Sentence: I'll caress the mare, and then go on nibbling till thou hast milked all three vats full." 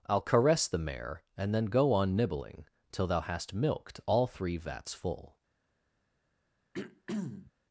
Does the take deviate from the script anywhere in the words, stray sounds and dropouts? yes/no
yes